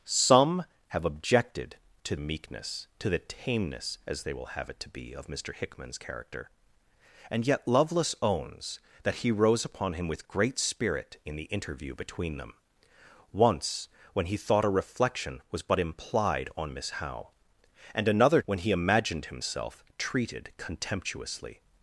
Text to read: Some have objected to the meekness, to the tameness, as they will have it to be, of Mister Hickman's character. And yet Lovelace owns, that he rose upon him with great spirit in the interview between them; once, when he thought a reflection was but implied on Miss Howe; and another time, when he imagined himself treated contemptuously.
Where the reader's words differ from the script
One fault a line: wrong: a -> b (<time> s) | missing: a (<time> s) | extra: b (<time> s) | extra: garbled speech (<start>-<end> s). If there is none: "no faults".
missing: the (2.1 s)
missing: time (18.4 s)